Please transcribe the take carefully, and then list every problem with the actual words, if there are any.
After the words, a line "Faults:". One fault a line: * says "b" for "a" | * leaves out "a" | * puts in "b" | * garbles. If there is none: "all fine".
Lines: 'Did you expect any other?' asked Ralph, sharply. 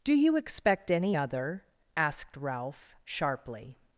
'Do you expect any other?' asked Ralph, sharply.
Faults:
* says "Do" for "Did"